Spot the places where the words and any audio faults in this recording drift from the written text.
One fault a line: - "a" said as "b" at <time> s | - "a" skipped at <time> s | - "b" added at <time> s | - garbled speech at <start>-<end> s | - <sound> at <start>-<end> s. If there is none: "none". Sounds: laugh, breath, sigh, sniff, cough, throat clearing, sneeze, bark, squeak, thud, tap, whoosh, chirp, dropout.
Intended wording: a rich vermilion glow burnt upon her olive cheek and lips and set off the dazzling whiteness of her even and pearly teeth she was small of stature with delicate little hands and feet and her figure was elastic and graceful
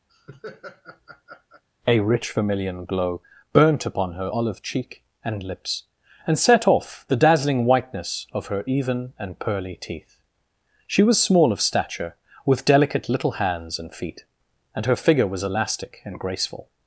- laugh at 0.1-1.6 s